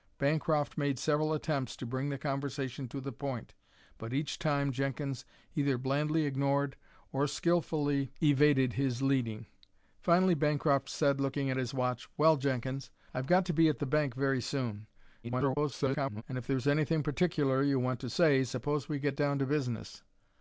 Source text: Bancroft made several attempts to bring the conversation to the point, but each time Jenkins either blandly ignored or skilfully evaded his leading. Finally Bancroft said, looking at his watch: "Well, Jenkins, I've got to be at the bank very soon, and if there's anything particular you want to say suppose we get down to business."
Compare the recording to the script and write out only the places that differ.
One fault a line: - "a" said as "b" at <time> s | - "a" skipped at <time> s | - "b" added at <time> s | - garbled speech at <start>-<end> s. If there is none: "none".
- garbled speech at 15.2-16.2 s